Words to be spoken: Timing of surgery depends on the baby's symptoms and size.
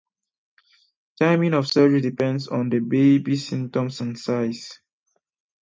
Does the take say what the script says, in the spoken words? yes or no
yes